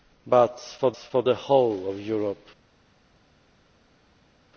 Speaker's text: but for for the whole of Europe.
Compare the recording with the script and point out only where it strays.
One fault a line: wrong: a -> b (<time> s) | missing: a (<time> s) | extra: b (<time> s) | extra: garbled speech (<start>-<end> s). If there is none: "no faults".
no faults